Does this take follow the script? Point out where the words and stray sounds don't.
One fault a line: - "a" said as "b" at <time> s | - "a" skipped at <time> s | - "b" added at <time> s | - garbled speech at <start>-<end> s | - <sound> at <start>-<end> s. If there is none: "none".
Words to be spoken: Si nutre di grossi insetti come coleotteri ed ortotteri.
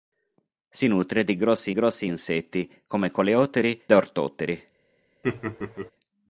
- "grossi" added at 1.7 s
- "ed" skipped at 3.8 s
- laugh at 5.2-5.9 s